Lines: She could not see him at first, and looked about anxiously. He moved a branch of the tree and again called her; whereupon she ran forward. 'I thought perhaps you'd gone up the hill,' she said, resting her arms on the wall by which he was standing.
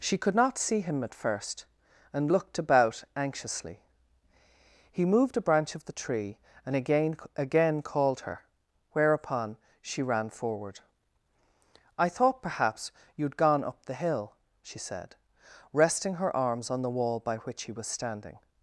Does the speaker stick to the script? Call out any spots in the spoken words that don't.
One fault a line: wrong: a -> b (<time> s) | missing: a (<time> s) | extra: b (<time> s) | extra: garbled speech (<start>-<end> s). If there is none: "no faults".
extra: again (7.3 s)